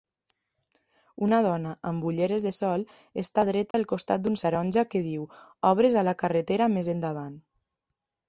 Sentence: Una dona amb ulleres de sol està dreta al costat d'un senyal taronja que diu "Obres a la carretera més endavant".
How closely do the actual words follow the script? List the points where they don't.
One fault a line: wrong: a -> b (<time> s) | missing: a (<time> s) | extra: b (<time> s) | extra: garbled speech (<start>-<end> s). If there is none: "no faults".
missing: senyal (4.4 s)